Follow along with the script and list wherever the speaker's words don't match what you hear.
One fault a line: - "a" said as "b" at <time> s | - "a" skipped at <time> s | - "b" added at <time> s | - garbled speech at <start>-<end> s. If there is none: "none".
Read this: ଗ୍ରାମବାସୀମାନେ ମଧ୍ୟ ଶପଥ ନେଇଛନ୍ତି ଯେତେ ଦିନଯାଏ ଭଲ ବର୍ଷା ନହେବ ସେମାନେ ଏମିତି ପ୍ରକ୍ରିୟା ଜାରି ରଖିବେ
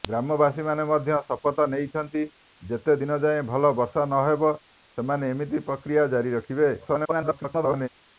- garbled speech at 6.8-7.9 s